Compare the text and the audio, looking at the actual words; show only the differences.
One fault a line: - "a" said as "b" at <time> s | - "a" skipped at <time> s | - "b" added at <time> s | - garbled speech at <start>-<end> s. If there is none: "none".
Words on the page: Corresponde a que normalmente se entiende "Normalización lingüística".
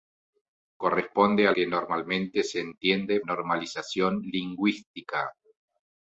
none